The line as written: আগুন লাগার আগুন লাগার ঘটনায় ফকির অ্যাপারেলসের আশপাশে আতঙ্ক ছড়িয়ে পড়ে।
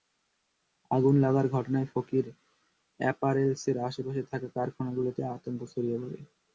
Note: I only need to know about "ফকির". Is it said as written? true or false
true